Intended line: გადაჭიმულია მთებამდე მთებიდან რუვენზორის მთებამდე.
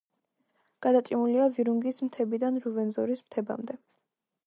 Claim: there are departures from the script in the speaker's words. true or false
true